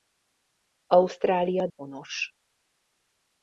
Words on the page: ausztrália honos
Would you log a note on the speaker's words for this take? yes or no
no